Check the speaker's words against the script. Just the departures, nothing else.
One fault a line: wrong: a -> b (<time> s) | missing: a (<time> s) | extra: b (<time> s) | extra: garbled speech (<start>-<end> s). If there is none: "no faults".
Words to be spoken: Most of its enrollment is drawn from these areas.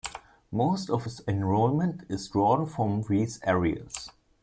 no faults